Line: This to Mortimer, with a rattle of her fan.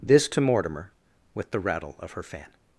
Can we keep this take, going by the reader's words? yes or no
no